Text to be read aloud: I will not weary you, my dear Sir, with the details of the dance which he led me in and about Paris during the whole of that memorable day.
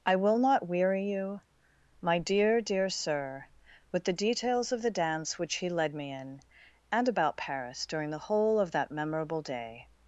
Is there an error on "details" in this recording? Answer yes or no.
no